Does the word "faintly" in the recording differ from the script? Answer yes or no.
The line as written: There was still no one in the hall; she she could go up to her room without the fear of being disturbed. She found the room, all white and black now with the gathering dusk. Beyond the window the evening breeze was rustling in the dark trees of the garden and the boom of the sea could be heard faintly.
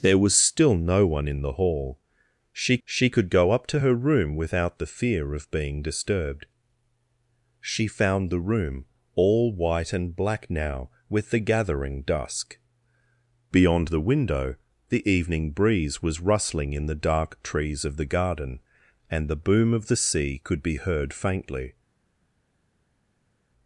no